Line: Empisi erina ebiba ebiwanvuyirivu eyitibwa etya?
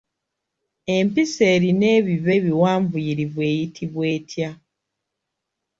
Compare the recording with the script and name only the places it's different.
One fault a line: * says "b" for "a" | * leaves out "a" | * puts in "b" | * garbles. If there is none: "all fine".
all fine